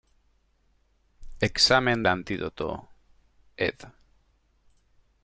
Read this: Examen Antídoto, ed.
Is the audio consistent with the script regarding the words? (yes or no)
yes